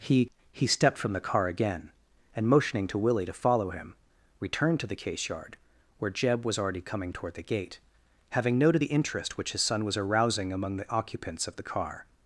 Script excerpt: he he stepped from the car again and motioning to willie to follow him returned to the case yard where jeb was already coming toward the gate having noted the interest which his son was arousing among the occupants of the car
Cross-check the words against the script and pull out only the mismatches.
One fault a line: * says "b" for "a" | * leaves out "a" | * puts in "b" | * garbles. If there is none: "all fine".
all fine